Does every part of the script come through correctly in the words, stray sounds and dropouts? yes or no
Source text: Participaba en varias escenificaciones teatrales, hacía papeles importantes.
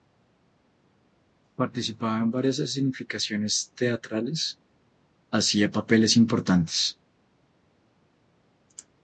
yes